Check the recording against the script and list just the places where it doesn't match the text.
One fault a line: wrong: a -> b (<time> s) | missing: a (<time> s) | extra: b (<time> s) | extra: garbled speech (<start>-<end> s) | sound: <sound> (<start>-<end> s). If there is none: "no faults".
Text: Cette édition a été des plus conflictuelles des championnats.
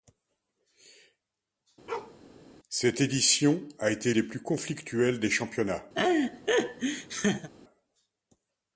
sound: bark (1.9-2.2 s)
sound: laugh (6.0-7.5 s)